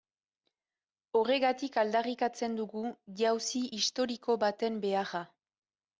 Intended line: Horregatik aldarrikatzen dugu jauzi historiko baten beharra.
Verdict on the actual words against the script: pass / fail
pass